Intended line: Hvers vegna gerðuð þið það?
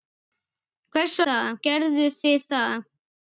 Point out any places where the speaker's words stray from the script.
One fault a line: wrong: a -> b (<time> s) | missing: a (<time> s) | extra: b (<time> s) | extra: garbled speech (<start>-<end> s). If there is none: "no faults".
wrong: vegna -> það (1.3 s)